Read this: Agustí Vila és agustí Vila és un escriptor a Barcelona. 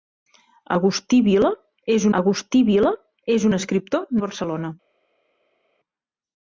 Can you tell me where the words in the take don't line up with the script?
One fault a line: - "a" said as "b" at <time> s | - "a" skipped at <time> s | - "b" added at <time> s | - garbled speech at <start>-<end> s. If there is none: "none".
none